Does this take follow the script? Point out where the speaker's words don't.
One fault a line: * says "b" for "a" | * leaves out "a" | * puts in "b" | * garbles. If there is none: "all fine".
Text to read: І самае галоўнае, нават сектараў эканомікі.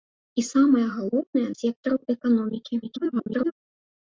* leaves out "нават"
* garbles